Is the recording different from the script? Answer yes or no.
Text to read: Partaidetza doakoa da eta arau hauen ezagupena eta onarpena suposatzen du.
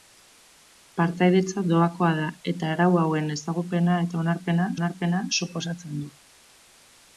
yes